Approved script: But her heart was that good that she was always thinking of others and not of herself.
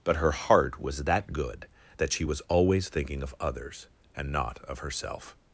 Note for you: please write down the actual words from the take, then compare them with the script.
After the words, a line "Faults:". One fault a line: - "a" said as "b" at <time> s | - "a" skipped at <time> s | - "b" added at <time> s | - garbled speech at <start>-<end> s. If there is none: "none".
But her heart was that good that she was always thinking of others and not of herself.
Faults:
none